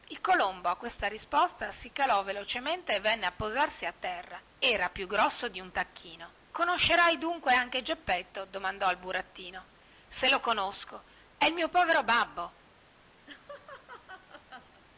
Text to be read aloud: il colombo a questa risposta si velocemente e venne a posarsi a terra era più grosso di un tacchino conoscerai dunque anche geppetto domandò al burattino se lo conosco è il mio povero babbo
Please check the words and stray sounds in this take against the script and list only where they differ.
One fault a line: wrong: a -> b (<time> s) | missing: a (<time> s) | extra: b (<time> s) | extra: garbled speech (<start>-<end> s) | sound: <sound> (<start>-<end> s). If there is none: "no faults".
extra: calò (1.9 s)
sound: laugh (13.3-14.8 s)